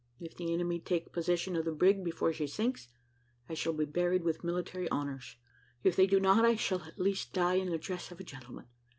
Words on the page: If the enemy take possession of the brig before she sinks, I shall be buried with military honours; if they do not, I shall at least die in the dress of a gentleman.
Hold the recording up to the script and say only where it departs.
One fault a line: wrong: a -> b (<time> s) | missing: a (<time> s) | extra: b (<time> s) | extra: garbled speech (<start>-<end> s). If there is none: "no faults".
no faults